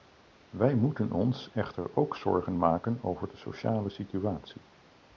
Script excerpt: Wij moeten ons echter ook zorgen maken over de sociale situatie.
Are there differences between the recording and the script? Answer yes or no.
no